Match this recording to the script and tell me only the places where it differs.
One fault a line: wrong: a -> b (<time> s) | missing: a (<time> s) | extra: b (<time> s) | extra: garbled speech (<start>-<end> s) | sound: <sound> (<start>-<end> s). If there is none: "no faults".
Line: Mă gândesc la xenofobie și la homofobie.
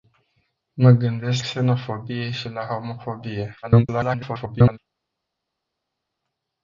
missing: la (1.4 s)
extra: garbled speech (3.6-4.8 s)